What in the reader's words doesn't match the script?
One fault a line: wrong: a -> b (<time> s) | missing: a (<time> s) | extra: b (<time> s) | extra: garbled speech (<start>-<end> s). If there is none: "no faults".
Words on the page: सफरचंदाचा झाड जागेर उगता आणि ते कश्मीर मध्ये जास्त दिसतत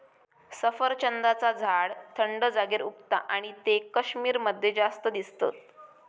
extra: थंड (2.2 s)